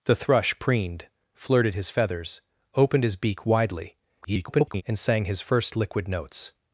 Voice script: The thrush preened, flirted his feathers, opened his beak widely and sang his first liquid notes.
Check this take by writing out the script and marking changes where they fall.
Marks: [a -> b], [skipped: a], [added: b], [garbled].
The thrush preened, flirted his feathers, opened his beak widely [garbled] and sang his first liquid notes.